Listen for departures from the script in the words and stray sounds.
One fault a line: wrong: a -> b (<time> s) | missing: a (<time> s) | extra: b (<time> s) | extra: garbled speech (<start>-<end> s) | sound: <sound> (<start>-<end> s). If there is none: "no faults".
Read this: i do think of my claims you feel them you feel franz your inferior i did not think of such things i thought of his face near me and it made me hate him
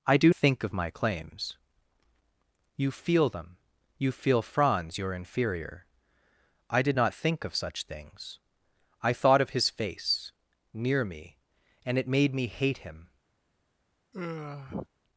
sound: sigh (14.1-14.9 s)